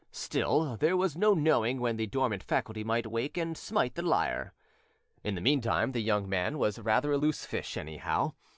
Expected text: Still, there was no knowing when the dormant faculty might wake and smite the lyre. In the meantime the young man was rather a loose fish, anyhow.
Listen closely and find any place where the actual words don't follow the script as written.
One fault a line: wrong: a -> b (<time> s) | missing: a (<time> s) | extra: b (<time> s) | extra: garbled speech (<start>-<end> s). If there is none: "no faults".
no faults